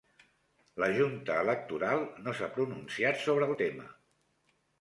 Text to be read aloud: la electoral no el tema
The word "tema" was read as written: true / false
true